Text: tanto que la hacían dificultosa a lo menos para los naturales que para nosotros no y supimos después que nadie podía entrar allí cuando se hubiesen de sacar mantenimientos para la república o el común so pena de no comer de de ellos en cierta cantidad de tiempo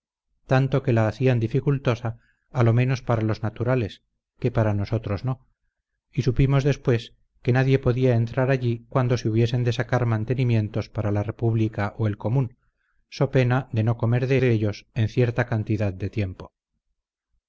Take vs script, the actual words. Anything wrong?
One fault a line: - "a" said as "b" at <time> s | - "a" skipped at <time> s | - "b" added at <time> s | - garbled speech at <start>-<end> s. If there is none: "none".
none